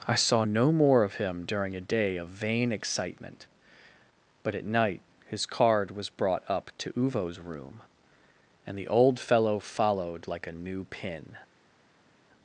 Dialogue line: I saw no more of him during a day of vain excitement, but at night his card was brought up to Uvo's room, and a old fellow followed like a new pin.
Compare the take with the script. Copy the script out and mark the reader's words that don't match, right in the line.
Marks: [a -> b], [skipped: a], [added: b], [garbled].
I saw no more of him during a day of vain excitement, but at night his card was brought up to Uvo's room, and [a -> the] old fellow followed like a new pin.